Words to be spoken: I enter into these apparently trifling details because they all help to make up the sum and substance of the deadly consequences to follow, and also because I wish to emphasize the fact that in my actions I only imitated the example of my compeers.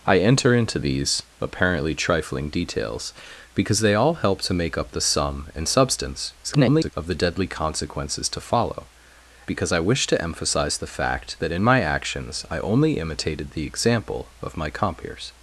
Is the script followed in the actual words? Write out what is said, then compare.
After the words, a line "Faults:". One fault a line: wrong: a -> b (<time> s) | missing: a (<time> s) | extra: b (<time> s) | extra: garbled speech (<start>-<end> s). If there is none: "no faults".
I enter into these apparently trifling details because they all help to make up the sum and substance [garbled] of the deadly consequences to follow, because I wish to emphasize the fact that in my actions I only imitated the example of my compeers.
Faults:
extra: garbled speech (6.4-6.9 s)
missing: and also (8.9 s)